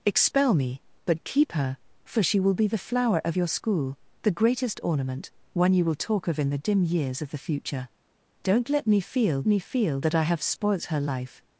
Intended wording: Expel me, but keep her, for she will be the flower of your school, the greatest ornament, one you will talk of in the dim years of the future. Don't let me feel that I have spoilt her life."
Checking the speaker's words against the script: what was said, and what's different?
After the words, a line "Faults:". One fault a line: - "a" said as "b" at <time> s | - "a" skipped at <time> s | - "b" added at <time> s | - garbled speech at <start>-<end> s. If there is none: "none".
Expel me, but keep her, for she will be the flower of your school, the greatest ornament, one you will talk of in the dim years of the future. Don't let me feel me feel that I have spoilt her life."
Faults:
- "me feel" added at 9.5 s